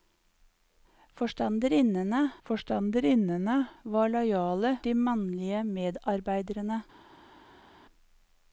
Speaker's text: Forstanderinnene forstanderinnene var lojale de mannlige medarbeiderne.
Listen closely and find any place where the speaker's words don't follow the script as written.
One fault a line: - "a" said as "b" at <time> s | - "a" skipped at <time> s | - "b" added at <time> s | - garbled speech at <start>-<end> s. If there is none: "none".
none